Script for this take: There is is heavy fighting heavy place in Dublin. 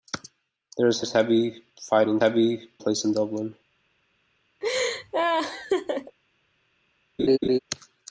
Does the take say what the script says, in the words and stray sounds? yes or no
no